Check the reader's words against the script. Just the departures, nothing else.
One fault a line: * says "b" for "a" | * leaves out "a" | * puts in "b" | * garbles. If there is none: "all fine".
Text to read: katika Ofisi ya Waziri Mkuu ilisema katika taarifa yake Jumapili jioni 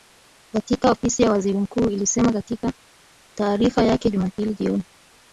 all fine